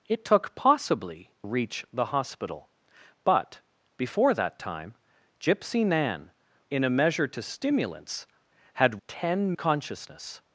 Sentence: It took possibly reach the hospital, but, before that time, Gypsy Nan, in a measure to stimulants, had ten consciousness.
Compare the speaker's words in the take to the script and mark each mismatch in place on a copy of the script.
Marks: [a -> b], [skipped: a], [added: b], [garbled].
It took possibly reach the hospital, but, before that time, Gypsy Nan, in a measure to stimulants, had ten consciousness.